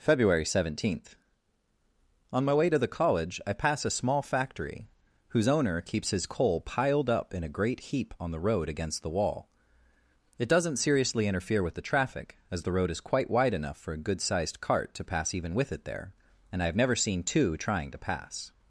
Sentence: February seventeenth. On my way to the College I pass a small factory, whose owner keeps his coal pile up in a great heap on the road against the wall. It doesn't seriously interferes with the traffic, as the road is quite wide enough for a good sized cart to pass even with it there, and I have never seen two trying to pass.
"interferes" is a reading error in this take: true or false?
true